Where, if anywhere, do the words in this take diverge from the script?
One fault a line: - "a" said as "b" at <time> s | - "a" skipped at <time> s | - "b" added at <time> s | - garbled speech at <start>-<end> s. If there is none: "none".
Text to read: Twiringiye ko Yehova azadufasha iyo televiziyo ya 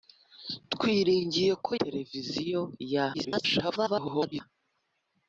- "Yehova azadufasha iyo" skipped at 1.7 s
- garbled speech at 3.1-4.4 s